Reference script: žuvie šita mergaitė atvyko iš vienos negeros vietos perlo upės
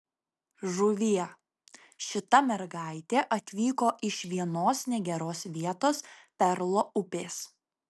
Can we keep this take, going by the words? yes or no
yes